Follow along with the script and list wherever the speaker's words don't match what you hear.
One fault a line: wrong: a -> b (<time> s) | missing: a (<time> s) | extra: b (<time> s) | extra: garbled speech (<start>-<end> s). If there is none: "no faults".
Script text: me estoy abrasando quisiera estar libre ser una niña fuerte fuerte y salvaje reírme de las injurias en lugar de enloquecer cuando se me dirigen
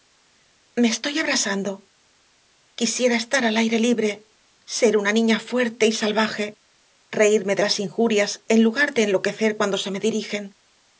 extra: al aire (3.5 s)
missing: fuerte (5.8 s)